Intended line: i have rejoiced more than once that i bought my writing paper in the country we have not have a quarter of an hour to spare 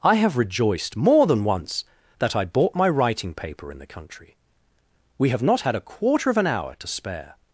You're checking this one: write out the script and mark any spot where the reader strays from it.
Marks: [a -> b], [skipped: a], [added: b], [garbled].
i have rejoiced more than once that i bought my writing paper in the country we have not [have -> had] a quarter of an hour to spare